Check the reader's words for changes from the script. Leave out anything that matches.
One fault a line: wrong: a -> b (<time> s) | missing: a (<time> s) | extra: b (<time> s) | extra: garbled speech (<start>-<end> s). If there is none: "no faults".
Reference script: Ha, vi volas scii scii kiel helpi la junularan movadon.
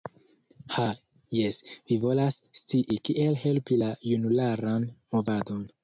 extra: jes (1.4 s)
missing: scii (3.0 s)